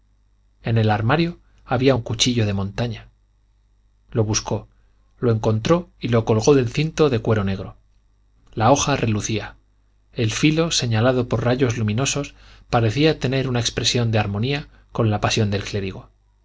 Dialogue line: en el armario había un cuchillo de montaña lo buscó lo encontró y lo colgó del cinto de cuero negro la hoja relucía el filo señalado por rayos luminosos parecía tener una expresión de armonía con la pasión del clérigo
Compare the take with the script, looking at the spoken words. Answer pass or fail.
pass